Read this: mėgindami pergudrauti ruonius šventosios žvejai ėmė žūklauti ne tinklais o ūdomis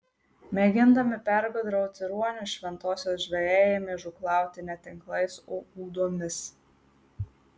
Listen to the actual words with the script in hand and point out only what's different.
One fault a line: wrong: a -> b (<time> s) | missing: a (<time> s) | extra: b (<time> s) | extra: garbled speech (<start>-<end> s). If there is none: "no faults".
no faults